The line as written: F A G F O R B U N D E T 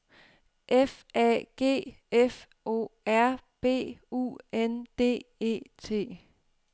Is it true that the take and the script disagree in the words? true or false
false